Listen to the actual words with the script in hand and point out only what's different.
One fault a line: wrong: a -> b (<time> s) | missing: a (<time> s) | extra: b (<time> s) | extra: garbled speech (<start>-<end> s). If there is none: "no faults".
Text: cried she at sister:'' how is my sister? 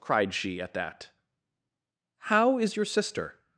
wrong: sister -> that (0.7 s)
wrong: my -> your (2.7 s)